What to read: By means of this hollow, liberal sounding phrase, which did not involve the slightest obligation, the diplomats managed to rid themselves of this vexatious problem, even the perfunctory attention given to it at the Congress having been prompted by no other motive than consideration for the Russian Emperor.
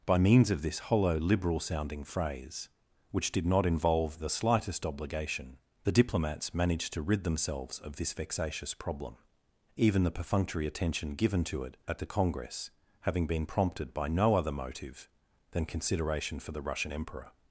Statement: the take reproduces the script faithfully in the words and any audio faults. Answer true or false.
true